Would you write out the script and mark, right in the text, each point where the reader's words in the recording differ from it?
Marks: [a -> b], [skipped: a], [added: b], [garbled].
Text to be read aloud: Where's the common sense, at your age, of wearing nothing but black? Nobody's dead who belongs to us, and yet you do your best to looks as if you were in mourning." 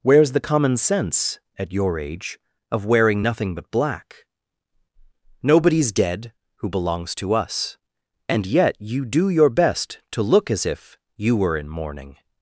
Where's the common sense, at your age, of wearing nothing but black? Nobody's dead who belongs to us, and yet you do your best to [looks -> look] as if you were in mourning."